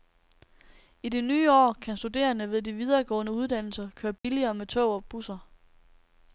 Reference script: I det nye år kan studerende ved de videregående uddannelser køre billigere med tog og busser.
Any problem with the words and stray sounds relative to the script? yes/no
yes